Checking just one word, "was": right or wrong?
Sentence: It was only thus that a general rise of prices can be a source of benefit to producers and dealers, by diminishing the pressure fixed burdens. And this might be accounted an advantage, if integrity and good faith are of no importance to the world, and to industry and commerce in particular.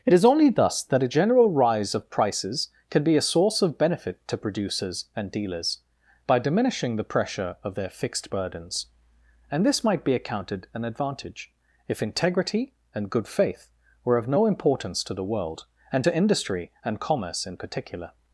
wrong